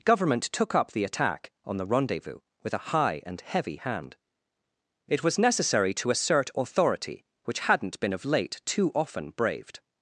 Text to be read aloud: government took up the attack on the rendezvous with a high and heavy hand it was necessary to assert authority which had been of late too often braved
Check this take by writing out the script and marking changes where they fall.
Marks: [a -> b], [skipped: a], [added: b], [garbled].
government took up the attack on the rendezvous with a high and heavy hand it was necessary to assert authority which [had -> hadn't] been of late too often braved